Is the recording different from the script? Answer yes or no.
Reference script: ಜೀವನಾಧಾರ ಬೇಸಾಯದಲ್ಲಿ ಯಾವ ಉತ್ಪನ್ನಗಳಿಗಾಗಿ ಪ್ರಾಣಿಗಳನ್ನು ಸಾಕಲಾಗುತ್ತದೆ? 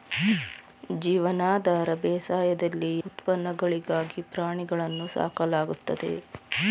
yes